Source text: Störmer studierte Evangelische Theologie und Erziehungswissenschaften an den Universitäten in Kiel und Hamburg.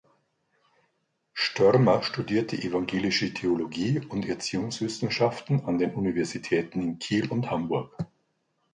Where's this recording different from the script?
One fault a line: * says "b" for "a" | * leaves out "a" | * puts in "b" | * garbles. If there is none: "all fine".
all fine